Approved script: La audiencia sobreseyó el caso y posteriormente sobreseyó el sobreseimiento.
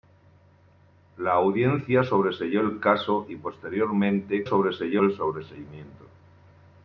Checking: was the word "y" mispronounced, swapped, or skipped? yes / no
no